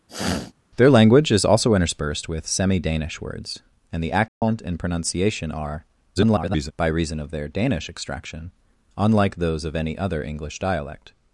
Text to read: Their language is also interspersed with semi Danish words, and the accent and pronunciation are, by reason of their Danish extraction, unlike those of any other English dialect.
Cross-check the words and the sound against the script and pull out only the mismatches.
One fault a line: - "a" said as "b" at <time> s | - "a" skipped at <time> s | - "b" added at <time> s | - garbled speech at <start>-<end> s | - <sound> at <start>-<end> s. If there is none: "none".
- sniff at 0.1-0.5 s
- dropout at 4.3-4.4 s
- garbled speech at 6.2-6.7 s